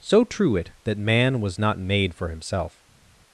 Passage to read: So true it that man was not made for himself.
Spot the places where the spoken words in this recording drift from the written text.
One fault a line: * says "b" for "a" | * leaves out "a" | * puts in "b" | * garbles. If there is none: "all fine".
all fine